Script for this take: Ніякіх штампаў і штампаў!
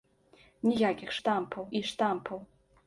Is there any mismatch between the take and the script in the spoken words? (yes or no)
no